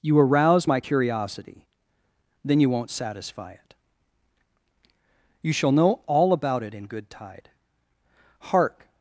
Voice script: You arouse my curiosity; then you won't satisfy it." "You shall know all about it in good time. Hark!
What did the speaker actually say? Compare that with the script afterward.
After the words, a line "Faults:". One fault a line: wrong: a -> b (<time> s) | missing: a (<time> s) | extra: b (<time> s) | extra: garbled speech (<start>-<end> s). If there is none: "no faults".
You arouse my curiosity; then you won't satisfy it." "You shall know all about it in good tide. Hark!
Faults:
wrong: time -> tide (7.1 s)